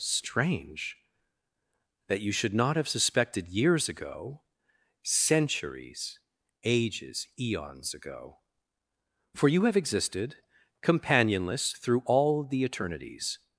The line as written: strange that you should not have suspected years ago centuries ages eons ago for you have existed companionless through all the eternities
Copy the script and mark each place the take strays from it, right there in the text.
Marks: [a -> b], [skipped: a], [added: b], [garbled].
strange that you should not have suspected years ago centuries ages eons ago for you have existed companionless through all the eternities